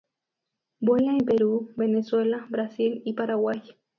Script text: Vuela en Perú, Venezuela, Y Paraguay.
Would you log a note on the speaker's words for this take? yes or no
yes